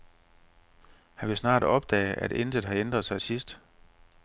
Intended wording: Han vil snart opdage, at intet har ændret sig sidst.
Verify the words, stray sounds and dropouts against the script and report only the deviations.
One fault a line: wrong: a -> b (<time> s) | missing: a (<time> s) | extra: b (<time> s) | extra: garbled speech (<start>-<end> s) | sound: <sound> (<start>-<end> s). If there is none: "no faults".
no faults